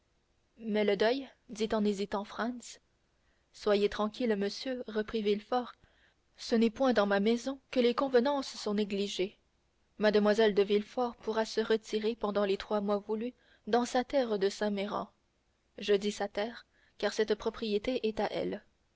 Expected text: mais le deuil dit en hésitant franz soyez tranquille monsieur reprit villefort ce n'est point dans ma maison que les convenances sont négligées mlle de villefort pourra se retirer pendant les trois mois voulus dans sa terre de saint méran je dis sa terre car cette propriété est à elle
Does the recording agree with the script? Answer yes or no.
yes